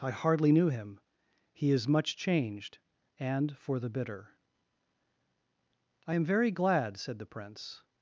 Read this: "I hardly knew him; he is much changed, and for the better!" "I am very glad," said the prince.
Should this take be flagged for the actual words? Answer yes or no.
yes